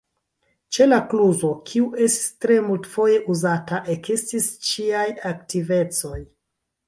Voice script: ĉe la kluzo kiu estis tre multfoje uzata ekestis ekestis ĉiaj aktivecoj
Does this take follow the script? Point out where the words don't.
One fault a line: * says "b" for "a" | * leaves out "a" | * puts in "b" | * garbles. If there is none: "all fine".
* leaves out "ekestis"